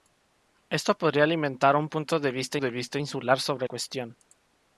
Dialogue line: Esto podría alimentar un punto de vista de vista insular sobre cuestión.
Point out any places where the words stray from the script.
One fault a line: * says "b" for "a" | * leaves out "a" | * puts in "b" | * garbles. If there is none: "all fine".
all fine